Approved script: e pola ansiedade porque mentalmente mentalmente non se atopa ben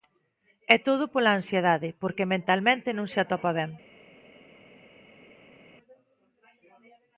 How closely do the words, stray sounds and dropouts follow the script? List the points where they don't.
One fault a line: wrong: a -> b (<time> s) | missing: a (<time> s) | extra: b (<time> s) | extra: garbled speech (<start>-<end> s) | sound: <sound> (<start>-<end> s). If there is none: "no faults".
extra: todo (0.9 s)
missing: mentalmente (2.9 s)